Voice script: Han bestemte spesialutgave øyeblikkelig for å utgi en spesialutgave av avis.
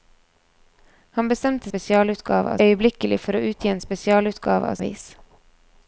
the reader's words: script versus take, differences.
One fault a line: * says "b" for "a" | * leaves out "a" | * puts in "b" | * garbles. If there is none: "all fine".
all fine